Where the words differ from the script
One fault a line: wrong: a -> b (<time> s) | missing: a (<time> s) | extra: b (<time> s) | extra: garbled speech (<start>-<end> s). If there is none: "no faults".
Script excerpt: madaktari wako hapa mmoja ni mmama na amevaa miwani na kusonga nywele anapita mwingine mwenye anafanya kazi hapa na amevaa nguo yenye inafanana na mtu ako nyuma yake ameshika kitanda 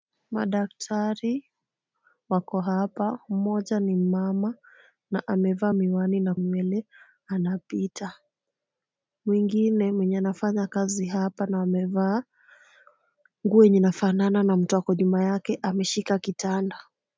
missing: kusonga (6.3 s)